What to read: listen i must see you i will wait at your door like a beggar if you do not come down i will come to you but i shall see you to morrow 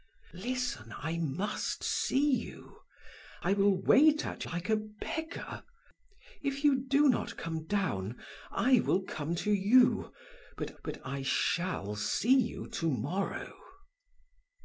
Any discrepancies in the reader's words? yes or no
yes